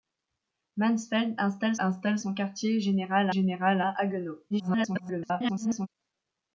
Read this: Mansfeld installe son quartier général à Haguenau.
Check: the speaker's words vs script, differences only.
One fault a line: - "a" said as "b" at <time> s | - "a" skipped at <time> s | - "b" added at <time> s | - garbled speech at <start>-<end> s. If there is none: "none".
- "installe" added at 1.8 s
- "général" added at 3.3 s
- garbled speech at 4.5-5.9 s